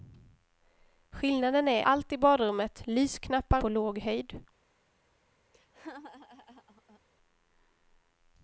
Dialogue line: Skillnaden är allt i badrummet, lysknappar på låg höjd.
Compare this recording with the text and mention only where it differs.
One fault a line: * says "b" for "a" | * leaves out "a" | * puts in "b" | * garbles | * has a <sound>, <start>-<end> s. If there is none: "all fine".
* has a laugh, 5.5-7.0 s